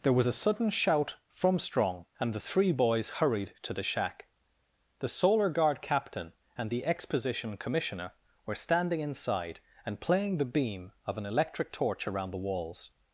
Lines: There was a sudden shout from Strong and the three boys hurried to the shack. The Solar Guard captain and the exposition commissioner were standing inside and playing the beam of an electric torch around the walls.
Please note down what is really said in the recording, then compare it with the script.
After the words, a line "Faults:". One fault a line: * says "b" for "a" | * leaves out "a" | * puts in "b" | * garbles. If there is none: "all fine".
There was a sudden shout from Strong and the three boys hurried to the shack. The Solar Guard captain and the exposition commissioner were standing inside and playing the beam of an electric torch around the walls.
Faults:
all fine